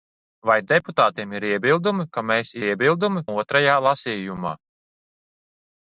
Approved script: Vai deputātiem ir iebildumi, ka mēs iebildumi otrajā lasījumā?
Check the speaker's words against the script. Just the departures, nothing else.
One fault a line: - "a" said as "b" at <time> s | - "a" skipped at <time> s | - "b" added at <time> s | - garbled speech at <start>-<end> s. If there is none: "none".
none